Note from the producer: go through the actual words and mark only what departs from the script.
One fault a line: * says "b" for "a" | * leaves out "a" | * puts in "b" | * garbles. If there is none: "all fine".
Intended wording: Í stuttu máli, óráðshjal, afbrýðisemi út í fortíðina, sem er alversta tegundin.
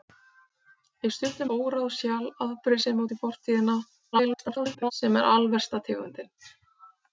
* leaves out "máli"
* garbles